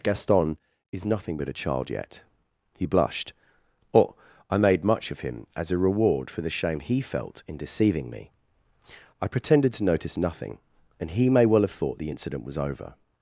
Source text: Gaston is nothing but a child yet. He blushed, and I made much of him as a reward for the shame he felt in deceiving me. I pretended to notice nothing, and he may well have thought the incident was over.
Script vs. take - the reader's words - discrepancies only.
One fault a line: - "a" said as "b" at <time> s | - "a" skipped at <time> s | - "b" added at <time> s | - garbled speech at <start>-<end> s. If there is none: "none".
- "and" said as "or" at 3.9 s